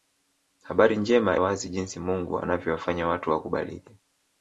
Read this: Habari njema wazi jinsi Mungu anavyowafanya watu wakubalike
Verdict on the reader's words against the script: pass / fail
pass